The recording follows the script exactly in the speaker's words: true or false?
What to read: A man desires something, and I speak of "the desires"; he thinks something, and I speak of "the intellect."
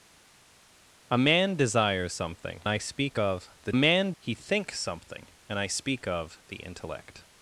false